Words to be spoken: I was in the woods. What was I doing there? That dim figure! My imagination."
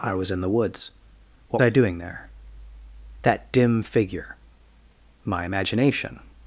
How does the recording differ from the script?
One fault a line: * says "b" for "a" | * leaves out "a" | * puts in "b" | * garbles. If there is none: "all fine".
* leaves out "was"